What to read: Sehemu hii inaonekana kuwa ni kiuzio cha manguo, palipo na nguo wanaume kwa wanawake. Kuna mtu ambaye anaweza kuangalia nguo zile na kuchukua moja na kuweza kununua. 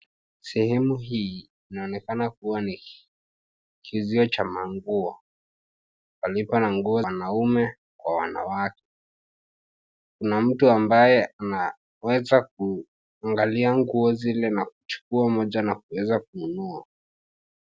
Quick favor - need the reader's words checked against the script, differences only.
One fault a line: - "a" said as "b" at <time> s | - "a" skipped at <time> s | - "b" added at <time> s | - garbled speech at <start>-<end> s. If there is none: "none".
none